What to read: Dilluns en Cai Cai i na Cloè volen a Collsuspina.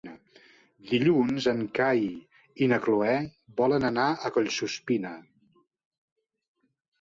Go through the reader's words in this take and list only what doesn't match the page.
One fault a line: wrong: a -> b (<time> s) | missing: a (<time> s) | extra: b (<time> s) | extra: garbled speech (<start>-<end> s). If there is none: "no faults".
missing: Cai (2.0 s)
extra: anar (3.9 s)